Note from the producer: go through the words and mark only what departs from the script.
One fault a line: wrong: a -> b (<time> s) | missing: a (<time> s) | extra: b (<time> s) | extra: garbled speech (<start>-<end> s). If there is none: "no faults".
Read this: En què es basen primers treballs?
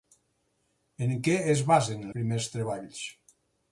no faults